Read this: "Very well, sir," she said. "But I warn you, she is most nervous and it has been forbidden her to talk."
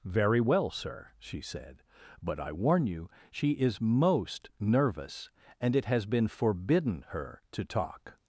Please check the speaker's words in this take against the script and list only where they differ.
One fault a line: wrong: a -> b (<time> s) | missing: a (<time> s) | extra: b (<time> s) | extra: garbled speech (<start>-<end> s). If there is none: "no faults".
no faults